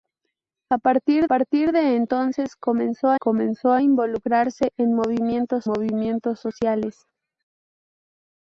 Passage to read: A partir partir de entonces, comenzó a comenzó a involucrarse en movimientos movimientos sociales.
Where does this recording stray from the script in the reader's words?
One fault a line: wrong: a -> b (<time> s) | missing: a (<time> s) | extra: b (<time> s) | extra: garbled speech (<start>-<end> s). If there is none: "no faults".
no faults